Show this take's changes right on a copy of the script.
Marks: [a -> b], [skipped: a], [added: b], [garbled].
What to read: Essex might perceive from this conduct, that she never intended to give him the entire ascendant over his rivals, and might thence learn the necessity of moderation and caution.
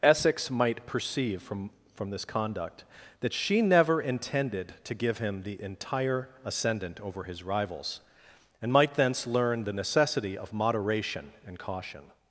Essex might perceive from [added: from] this conduct, that she never intended to give him the entire ascendant over his rivals, and might thence learn the necessity of moderation and caution.